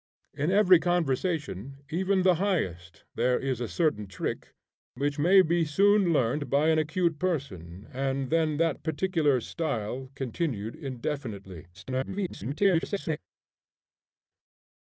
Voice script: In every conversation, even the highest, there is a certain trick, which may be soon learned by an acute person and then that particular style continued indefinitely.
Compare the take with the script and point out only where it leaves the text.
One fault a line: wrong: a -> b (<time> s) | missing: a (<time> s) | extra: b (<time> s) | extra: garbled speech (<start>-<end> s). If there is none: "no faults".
extra: garbled speech (11.7-13.2 s)